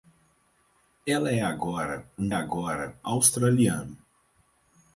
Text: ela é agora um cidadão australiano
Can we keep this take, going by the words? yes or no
no